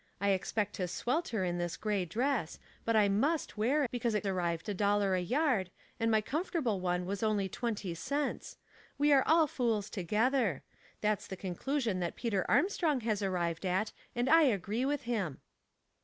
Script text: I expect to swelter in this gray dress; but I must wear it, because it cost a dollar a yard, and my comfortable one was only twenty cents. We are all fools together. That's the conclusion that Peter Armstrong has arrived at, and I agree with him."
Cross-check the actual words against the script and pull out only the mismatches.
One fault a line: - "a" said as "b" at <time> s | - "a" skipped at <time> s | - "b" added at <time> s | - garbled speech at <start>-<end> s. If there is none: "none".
- "it" skipped at 3.8 s
- "cost" said as "arrived" at 4.3 s